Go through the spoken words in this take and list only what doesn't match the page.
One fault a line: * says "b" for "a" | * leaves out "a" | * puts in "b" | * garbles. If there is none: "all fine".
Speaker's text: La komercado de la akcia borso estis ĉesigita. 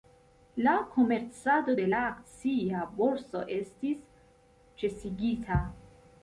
all fine